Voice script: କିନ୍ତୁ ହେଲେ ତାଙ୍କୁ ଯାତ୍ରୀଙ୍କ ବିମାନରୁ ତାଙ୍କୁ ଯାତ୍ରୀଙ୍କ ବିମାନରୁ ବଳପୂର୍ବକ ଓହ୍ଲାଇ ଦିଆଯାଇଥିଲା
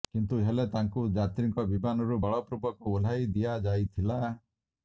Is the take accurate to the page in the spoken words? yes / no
no